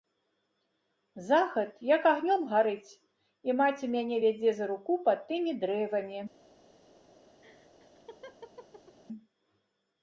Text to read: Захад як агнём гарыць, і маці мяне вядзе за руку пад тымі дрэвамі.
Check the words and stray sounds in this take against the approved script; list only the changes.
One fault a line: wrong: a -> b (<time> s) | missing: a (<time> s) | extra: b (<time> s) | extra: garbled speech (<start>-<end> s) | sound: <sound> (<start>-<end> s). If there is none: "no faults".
sound: laugh (7.4-9.0 s)